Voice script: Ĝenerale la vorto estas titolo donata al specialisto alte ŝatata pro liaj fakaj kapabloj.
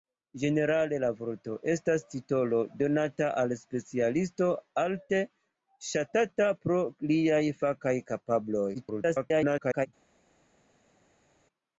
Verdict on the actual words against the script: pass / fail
fail